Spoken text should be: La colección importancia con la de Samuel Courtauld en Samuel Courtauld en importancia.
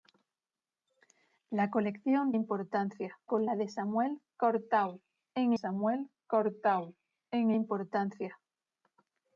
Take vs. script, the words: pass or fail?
pass